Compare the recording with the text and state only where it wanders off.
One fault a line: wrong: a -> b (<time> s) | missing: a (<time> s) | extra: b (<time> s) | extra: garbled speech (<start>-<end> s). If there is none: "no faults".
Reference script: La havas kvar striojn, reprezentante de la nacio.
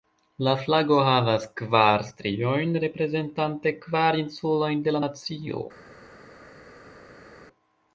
extra: flago (0.6 s)
extra: kvar insulojn (3.9 s)